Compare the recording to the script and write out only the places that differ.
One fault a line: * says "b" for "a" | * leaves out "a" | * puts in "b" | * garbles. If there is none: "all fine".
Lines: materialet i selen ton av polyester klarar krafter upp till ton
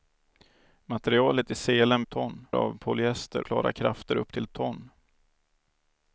all fine